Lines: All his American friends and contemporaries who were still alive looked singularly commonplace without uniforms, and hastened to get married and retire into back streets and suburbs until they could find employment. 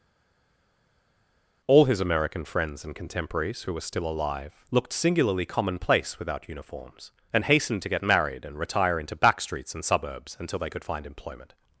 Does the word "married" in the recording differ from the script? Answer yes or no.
no